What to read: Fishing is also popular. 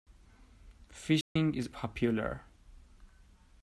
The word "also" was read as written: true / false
false